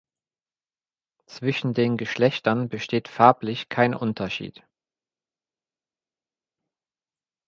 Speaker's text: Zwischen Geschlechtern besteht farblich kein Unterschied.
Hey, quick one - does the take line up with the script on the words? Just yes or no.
no